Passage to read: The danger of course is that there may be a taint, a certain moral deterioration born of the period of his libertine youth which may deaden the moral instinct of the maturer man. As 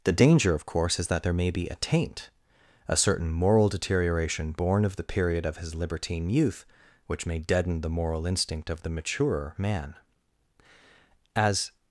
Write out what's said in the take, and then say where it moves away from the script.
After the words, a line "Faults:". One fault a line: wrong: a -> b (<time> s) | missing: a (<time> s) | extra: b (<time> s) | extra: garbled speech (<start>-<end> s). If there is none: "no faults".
The danger of course is that there may be a taint, a certain moral deterioration born of the period of his libertine youth which may deaden the moral instinct of the maturer man. As
Faults:
no faults